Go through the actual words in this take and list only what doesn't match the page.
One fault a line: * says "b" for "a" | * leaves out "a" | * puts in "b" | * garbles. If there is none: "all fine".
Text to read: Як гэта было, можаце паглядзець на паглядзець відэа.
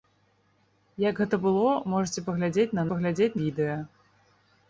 all fine